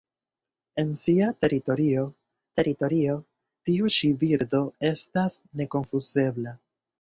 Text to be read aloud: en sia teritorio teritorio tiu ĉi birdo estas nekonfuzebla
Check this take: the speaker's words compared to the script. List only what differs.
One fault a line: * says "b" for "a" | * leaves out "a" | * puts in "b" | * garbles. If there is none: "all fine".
all fine